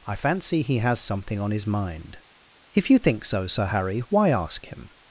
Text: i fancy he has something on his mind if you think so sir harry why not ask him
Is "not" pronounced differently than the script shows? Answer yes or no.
yes